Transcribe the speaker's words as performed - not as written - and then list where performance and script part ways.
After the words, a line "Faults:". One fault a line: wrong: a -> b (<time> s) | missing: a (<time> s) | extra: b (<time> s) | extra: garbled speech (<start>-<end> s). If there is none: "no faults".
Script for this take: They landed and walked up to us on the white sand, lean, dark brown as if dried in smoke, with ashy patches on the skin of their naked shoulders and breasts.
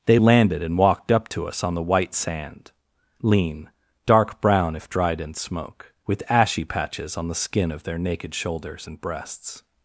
They landed and walked up to us on the white sand, lean, dark brown if dried in smoke, with ashy patches on the skin of their naked shoulders and breasts.
Faults:
missing: as (4.8 s)